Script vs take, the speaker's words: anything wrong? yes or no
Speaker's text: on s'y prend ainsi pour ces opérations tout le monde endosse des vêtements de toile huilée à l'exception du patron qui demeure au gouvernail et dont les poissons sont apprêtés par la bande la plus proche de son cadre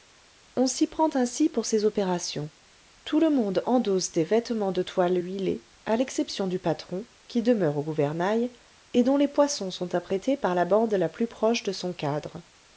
no